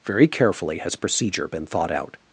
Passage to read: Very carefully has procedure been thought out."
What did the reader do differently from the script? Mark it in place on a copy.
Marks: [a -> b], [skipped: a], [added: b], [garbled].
Very carefully has procedure been thought out."